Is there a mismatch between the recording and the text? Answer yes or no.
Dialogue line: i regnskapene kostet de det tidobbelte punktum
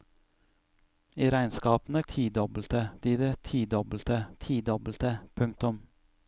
yes